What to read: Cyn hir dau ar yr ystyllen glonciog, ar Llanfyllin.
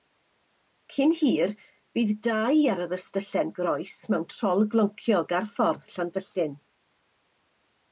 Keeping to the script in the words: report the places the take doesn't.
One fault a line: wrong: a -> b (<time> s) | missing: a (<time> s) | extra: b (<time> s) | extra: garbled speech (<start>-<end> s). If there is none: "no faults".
extra: bydd (2.0 s)
extra: groes mewn trol (3.6 s)
extra: ffordd (5.6 s)